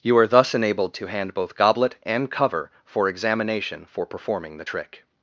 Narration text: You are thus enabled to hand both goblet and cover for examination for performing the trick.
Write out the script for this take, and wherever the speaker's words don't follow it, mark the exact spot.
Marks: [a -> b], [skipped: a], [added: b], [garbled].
You are thus enabled to hand both goblet and cover for examination for performing the trick.